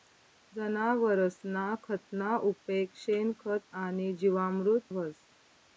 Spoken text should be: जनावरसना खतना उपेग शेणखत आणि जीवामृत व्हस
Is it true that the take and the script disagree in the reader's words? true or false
false